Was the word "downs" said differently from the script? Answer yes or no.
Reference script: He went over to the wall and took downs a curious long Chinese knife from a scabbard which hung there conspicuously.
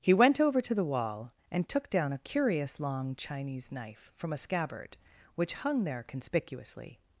yes